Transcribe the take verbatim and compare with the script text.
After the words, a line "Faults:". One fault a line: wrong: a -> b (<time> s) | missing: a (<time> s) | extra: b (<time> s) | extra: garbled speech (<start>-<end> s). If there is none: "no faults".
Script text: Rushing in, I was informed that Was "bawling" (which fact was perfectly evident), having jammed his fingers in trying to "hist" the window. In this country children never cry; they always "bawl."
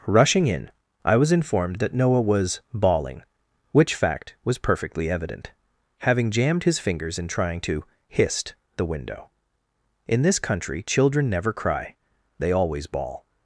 Rushing in, I was informed that Noah was "bawling" (which fact was perfectly evident), having jammed his fingers in trying to "hist" the window. In this country children never cry; they always "bawl."
Faults:
extra: Noah (1.9 s)